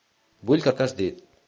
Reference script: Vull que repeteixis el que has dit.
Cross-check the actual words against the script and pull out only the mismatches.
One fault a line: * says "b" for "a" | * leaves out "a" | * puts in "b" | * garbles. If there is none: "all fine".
* leaves out "repeteixis"